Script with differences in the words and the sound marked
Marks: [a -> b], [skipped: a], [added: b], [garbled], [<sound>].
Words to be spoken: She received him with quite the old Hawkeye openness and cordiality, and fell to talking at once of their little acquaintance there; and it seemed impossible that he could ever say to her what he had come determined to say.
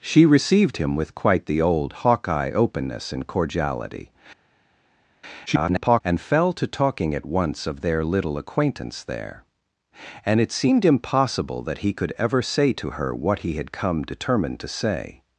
She received him with quite the old Hawkeye openness and cordiality, [garbled] and fell to talking at once of their little acquaintance there; and it seemed impossible that he could ever say to her what he had come determined to say.